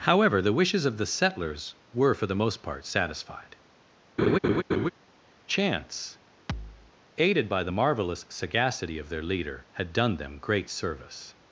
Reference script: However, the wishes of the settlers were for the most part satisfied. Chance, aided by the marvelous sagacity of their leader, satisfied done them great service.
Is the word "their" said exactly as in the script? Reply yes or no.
yes